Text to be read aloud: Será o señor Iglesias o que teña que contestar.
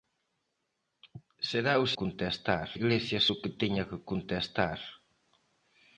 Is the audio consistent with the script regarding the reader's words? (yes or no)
no